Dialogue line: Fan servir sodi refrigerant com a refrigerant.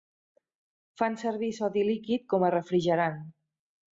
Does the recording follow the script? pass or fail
fail